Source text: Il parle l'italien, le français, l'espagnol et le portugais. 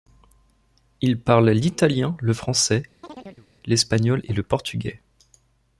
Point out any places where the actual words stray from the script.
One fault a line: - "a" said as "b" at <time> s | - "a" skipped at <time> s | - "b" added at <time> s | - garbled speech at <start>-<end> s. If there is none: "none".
none